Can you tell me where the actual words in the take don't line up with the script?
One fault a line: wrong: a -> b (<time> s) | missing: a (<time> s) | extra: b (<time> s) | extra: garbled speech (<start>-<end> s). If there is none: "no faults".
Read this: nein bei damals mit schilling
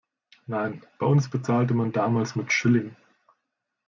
extra: uns bezahlte man (1.0 s)